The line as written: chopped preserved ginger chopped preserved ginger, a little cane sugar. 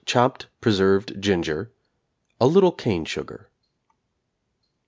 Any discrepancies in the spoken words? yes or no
yes